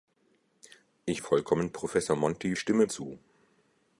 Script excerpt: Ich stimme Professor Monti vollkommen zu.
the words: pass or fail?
fail